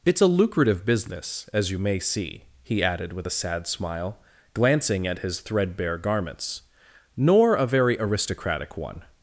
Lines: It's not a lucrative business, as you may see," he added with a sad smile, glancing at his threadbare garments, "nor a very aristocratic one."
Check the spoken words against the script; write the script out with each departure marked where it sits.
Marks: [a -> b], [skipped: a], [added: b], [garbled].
It's [skipped: not] a lucrative business, as you may see," he added with a sad smile, glancing at his threadbare garments, "nor a very aristocratic one."